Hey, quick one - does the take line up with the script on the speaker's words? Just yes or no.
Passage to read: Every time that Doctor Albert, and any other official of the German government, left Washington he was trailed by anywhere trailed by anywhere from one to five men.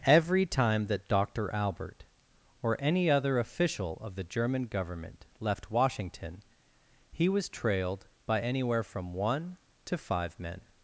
no